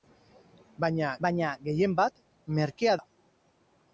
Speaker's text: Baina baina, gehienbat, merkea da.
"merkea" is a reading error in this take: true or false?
false